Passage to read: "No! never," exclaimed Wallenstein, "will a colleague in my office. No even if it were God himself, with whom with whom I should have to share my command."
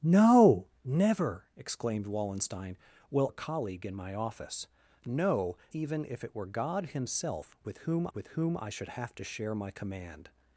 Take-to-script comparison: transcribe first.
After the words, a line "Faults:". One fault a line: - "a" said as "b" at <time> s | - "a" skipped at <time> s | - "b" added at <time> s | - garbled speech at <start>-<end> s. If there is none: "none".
"No! never," exclaimed Wallenstein, "will a colleague in my office. No even if it were God himself, with whom with whom I should have to share my command."
Faults:
none